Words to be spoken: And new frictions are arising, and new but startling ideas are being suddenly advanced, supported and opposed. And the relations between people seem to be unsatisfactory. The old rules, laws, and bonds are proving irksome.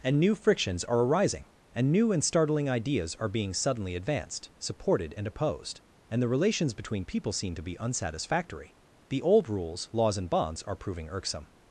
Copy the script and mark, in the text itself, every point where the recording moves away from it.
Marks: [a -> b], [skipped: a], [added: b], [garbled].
And new frictions are arising, and new [but -> and] startling ideas are being suddenly advanced, supported and opposed. And the relations between people seem to be unsatisfactory. The old rules, laws, and bonds are proving irksome.